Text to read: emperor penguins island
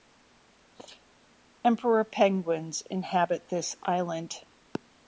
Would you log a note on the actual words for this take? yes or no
yes